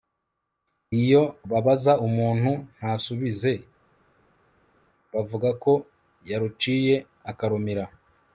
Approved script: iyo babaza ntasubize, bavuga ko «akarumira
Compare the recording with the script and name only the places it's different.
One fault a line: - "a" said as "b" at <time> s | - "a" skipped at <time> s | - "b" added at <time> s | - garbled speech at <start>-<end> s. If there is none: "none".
- "umuntu" added at 2.1 s
- "yaruciye" added at 6.3 s